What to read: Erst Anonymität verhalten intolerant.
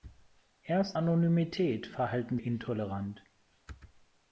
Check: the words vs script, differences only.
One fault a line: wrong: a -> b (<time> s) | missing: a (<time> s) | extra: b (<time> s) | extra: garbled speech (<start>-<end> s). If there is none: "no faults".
no faults